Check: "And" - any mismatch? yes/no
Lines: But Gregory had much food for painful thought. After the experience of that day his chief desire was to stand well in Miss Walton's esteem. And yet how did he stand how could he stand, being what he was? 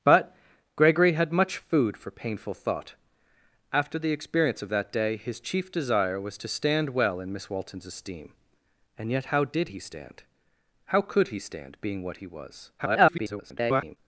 no